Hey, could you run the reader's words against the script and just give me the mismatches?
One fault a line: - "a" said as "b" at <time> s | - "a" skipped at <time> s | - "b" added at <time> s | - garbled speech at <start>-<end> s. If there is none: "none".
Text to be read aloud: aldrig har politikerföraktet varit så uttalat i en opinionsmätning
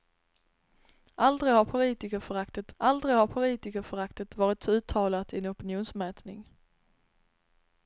- "aldrig har politikerföraktet" added at 2.8 s